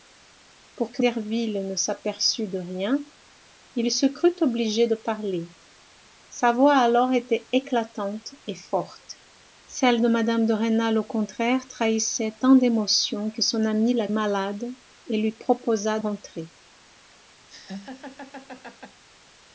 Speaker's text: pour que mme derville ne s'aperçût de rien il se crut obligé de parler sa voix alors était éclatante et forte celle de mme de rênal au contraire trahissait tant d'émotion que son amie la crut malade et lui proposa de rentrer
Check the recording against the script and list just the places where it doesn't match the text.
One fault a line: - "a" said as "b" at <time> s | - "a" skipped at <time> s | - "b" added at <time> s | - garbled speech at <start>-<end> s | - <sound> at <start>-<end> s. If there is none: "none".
- "mme" skipped at 1.0 s
- "crut" skipped at 14.1 s
- "de" skipped at 16.0 s
- laugh at 17.5-19.0 s